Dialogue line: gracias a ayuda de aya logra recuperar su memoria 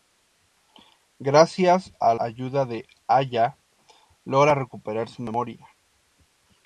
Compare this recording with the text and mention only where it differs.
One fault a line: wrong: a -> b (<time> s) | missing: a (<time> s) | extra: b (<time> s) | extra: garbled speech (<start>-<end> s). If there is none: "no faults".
no faults